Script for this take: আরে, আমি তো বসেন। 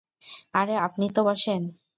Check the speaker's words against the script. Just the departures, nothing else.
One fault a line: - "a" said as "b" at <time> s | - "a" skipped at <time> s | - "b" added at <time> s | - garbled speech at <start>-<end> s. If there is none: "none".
- "আমি" said as "আপনি" at 0.8 s